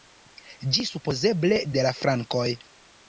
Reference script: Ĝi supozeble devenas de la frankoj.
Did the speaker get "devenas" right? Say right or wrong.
wrong